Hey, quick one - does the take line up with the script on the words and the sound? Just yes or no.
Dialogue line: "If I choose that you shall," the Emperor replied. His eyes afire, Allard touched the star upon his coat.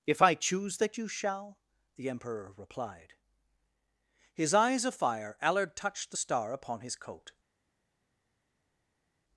no